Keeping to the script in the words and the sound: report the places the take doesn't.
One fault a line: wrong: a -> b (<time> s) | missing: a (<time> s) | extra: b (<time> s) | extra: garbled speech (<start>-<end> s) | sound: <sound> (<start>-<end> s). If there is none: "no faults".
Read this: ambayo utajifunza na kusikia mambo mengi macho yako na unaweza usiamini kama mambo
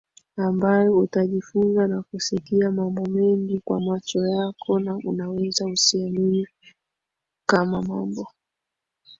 extra: kwa (3.6 s)